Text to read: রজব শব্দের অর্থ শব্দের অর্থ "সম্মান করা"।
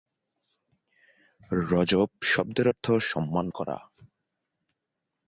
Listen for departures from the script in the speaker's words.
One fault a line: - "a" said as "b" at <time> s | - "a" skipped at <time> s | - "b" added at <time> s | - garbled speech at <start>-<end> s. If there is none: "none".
- "শব্দের অর্থ" skipped at 2.9 s